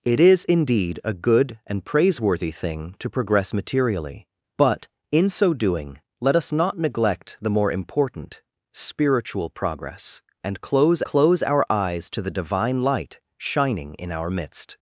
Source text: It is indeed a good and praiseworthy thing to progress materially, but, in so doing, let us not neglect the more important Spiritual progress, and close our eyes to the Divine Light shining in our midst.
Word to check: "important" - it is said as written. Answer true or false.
true